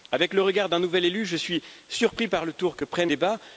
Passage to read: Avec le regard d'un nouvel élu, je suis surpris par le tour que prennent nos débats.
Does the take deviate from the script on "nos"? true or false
true